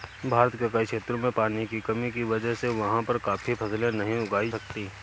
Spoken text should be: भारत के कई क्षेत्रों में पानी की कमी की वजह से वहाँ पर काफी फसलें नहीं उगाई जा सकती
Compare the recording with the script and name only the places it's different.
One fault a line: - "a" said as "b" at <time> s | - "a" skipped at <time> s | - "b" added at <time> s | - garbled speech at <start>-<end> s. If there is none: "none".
- "जा" skipped at 4.5 s